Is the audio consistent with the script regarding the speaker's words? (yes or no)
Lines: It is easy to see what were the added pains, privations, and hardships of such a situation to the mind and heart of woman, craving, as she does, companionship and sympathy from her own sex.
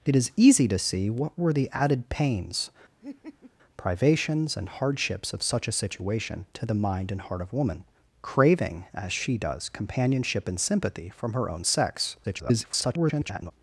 no